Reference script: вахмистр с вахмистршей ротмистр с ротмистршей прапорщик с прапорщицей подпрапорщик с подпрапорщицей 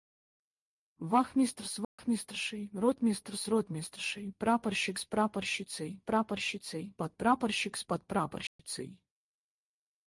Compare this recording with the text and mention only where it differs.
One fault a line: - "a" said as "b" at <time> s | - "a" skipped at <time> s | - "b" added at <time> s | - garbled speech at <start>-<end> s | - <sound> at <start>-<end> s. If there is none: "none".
- dropout at 1.8-2.0 s
- "прапорщицей" added at 6.0 s
- dropout at 8.5-8.6 s